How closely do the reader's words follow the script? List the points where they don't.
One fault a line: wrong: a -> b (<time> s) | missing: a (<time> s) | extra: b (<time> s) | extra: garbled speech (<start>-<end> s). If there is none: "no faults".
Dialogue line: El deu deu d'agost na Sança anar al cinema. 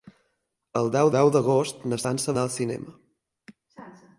no faults